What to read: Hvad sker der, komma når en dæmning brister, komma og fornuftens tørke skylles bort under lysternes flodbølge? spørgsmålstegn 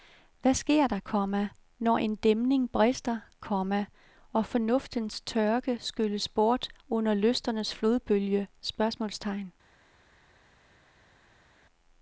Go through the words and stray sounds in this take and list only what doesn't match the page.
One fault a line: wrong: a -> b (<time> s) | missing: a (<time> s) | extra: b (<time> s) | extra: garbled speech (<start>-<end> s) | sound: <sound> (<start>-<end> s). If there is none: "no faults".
no faults